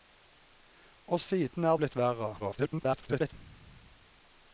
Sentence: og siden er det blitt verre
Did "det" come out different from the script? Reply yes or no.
yes